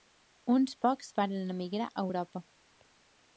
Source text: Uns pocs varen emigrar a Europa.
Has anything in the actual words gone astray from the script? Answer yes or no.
no